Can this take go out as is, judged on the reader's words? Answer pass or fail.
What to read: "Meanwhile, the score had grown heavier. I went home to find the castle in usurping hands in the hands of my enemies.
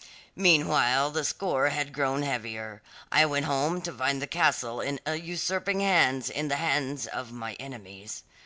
pass